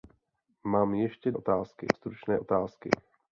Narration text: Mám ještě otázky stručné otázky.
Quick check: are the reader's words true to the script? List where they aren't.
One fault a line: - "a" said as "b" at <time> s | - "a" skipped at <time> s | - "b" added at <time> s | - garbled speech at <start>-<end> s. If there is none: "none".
none